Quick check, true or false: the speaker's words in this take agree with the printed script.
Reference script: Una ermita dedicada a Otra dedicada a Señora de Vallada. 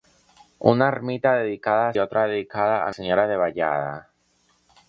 true